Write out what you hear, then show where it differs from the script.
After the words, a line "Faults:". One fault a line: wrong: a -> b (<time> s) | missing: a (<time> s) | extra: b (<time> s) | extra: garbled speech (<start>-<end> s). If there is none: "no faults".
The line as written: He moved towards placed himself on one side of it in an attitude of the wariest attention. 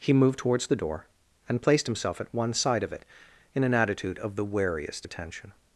He moved towards the door, and placed himself at one side of it in an attitude of the wariest attention.
Faults:
extra: the door and (0.7 s)
wrong: on -> at (2.2 s)